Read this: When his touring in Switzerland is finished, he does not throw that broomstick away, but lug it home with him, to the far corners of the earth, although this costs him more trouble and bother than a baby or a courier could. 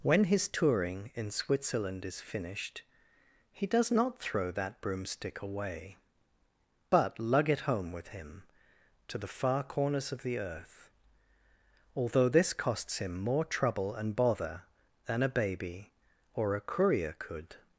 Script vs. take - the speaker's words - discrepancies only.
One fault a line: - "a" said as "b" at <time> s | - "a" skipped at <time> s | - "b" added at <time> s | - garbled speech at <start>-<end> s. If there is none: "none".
none